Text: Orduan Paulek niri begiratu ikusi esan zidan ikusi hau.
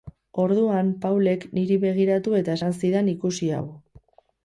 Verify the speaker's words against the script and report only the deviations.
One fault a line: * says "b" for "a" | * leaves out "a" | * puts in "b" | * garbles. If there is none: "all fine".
* says "eta" for "ikusi"